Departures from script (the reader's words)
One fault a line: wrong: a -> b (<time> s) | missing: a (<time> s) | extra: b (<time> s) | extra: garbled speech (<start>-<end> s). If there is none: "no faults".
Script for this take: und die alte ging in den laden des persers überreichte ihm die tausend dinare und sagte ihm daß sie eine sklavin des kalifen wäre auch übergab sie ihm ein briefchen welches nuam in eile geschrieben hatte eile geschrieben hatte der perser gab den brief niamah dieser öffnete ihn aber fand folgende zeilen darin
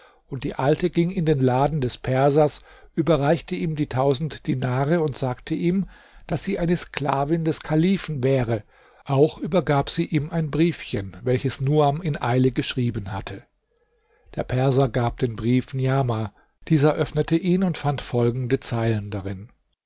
missing: eile geschrieben hatte (13.4 s)
wrong: aber -> und (17.6 s)